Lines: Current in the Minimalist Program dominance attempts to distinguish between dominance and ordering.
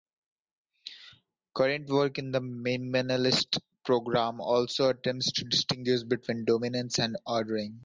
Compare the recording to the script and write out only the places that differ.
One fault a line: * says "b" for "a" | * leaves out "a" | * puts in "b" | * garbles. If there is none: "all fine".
* puts in "work"
* says "also" for "dominance"